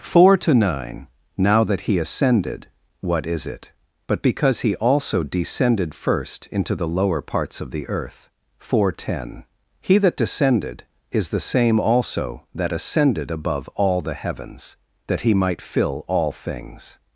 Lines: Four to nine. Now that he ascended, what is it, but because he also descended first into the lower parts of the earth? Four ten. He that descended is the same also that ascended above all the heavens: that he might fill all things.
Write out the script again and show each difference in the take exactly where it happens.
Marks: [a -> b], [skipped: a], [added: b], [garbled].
Four to nine. Now that he ascended, what is it, but because he also descended first into the lower parts of the earth? Four ten. He that descended is the same also that ascended above all the heavens: that he might fill all things.